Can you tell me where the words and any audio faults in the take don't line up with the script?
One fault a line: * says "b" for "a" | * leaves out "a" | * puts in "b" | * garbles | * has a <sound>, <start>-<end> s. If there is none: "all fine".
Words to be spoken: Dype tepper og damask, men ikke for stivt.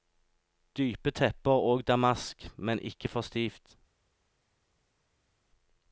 all fine